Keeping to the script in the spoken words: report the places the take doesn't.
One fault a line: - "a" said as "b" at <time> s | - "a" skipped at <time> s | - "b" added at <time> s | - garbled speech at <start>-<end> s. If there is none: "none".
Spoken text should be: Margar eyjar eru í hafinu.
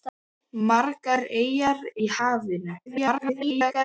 - "eru" skipped at 1.9 s
- garbled speech at 2.9-3.8 s